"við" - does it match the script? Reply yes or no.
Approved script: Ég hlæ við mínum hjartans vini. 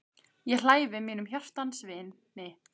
yes